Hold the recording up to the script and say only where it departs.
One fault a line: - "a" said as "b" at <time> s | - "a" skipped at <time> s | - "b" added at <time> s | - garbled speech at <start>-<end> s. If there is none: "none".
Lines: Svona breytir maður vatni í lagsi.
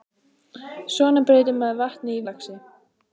none